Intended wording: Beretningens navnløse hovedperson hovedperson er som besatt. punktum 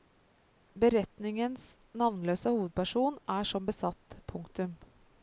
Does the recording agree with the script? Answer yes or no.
no